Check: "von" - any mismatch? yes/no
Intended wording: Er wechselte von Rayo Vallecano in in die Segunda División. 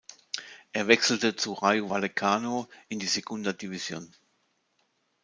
yes